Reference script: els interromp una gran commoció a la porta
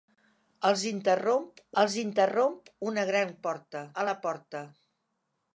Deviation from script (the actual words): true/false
true